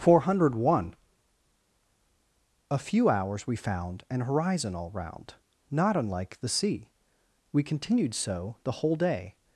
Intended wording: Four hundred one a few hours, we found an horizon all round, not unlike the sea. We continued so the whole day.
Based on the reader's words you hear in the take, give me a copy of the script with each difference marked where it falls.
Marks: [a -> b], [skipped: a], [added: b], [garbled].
Four hundred one a few hours, we found an horizon all round, not unlike the sea. We continued so the whole day.